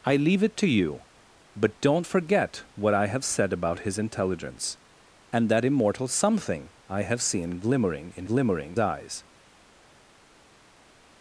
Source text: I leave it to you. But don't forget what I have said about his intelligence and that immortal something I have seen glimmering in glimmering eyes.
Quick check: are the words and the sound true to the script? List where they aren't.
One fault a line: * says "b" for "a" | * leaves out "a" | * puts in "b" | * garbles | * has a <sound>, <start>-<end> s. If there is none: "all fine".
all fine